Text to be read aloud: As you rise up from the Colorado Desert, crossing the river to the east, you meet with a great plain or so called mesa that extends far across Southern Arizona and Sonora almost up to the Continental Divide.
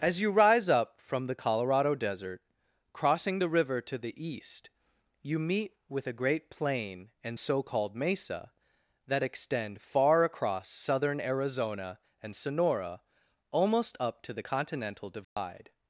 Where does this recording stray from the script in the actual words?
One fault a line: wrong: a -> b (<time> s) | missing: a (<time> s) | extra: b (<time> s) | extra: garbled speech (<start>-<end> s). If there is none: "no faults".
wrong: or -> and (7.2 s)
wrong: extends -> extend (9.2 s)